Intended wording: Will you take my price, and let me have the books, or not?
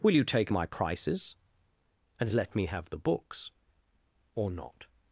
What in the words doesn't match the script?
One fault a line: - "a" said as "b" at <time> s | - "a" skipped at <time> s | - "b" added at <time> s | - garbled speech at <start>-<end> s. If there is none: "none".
- "price" said as "prices" at 0.7 s